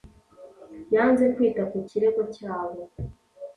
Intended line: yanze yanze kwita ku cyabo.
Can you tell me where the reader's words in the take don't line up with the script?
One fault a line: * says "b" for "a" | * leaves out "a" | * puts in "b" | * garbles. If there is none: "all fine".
* leaves out "yanze"
* puts in "kirego"